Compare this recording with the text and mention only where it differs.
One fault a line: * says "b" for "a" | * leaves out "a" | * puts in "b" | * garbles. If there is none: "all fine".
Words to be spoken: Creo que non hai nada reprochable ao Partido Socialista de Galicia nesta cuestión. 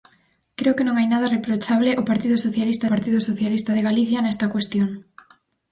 * puts in "Partido Socialista"